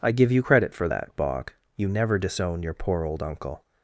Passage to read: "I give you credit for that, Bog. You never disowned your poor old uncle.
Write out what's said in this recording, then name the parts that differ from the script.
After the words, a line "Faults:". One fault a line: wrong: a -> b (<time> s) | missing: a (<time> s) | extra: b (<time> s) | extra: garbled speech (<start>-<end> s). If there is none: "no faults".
"I give you credit for that, Bog. You never disown your poor old uncle.
Faults:
wrong: disowned -> disown (2.2 s)